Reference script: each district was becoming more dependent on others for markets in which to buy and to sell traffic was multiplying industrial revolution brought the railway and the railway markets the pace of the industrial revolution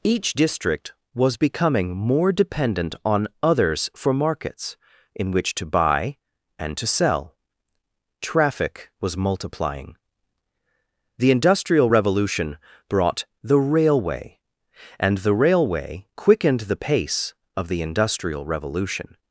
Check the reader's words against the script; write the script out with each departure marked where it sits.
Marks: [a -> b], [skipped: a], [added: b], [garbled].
each district was becoming more dependent on others for markets in which to buy and to sell traffic was multiplying [added: the] industrial revolution brought the railway and the railway [markets -> quickened] the pace of the industrial revolution